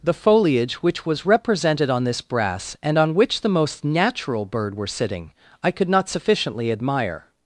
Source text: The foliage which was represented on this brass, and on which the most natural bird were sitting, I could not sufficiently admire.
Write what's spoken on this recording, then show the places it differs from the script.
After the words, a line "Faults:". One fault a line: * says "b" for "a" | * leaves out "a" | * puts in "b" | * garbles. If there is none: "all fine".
The foliage which was represented on this brass, and on which the most natural bird were sitting, I could not sufficiently admire.
Faults:
all fine